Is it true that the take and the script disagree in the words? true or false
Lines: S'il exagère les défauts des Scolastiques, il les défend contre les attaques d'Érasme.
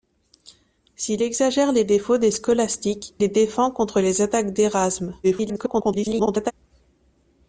true